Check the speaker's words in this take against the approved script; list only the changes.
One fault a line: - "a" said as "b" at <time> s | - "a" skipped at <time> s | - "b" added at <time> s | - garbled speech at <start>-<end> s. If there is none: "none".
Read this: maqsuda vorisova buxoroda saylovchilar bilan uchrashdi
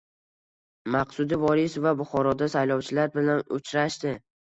none